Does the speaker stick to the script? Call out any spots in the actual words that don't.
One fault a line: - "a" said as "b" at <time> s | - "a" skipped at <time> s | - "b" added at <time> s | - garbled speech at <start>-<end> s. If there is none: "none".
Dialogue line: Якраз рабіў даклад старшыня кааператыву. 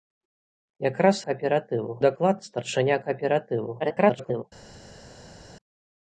- "рабіў" said as "кааператыву" at 1.3 s
- garbled speech at 3.8-4.4 s